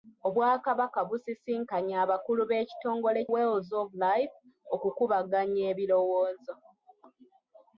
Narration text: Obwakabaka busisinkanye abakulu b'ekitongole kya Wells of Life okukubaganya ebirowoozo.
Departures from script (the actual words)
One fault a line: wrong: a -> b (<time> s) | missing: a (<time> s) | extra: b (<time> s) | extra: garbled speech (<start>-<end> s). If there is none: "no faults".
missing: kya (3.2 s)